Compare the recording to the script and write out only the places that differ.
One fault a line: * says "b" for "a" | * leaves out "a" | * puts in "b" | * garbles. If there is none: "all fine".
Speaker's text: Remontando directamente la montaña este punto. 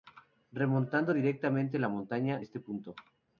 all fine